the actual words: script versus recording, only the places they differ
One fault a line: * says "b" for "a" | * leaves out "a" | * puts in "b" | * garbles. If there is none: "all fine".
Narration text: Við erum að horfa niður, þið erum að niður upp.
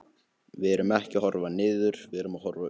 * puts in "ekki"
* says "við" for "þið"
* says "horfa" for "niður"